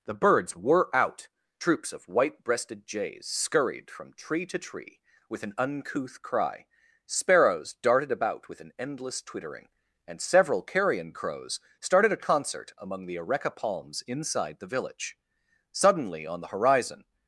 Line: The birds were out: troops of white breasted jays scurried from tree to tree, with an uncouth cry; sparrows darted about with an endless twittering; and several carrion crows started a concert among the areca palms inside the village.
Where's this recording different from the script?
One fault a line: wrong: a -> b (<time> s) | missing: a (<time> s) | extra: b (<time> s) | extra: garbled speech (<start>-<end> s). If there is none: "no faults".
extra: Suddenly on the horizon (15.7 s)